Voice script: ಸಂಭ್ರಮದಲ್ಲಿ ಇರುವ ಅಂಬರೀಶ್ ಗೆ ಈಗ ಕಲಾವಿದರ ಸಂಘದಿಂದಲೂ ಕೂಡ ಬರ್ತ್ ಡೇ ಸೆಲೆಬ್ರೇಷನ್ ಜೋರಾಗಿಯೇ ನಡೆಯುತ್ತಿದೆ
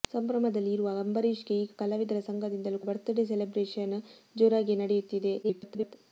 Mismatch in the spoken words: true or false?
true